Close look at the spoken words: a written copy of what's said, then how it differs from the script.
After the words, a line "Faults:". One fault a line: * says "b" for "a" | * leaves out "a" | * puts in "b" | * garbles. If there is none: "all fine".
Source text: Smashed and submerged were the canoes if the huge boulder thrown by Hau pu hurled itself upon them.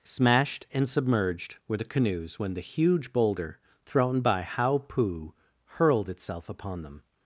Smashed and submerged were the canoes when the huge boulder thrown by Hau pu hurled itself upon them.
Faults:
* says "when" for "if"